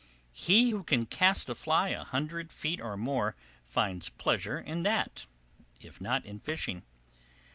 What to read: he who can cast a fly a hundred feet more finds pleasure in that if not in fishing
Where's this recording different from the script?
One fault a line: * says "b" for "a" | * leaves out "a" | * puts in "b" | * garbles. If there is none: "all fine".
* puts in "or"